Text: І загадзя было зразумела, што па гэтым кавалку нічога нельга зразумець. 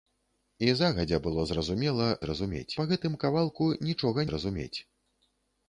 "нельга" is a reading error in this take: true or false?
true